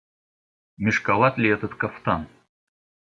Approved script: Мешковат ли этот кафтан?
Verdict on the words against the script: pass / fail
pass